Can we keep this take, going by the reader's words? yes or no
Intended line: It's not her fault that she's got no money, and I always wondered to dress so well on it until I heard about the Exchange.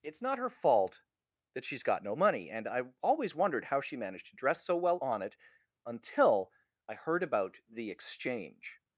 no